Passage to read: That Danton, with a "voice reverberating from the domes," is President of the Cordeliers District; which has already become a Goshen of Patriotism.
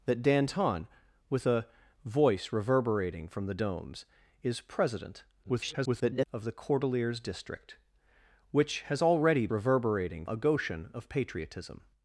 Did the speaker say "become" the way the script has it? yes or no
no